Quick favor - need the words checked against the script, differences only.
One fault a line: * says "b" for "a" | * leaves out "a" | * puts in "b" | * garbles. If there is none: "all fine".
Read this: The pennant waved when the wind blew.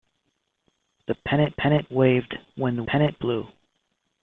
* puts in "pennant"
* says "pennant" for "wind"